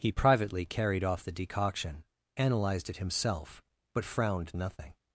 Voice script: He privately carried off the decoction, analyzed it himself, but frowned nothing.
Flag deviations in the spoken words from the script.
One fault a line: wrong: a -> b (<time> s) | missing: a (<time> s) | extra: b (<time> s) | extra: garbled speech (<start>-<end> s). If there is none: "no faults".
no faults